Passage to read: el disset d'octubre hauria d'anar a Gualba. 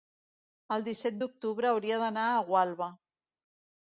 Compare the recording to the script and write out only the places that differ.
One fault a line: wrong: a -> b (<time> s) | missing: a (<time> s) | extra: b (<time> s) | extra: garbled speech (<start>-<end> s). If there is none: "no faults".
no faults